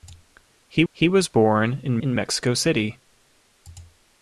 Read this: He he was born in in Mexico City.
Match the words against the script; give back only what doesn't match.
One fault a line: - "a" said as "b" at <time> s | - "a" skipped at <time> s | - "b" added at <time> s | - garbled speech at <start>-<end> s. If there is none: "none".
none